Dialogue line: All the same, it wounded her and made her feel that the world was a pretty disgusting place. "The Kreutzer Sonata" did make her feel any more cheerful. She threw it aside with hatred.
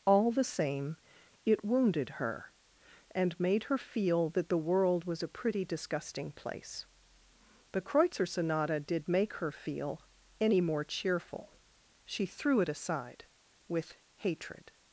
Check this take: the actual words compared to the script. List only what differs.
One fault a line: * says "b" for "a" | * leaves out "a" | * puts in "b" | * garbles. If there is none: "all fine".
all fine